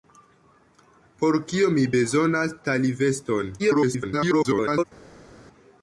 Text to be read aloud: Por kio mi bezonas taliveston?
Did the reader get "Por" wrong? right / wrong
right